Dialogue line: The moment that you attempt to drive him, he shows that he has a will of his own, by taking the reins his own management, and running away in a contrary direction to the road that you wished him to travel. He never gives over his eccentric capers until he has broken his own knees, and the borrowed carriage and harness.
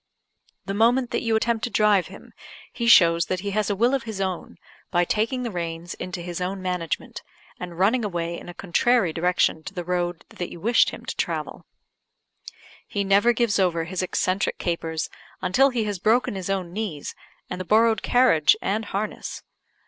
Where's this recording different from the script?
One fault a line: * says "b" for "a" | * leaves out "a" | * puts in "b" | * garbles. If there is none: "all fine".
* puts in "into"